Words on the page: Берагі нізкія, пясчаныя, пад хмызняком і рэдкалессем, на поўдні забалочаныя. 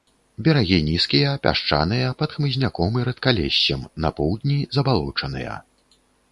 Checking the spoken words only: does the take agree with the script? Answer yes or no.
yes